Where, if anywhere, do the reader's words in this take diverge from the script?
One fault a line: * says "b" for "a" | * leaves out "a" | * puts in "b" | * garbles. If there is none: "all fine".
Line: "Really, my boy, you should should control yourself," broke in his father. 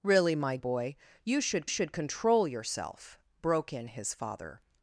all fine